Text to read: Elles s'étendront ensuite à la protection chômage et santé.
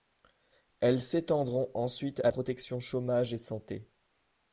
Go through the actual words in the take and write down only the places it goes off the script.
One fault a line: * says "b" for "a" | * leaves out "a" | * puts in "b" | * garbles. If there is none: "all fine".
* leaves out "la"